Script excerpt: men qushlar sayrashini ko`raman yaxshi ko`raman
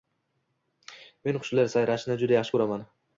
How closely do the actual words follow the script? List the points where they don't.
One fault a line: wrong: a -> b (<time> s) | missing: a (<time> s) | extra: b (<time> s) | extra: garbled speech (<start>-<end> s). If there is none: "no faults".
wrong: ko`raman -> juda (2.2 s)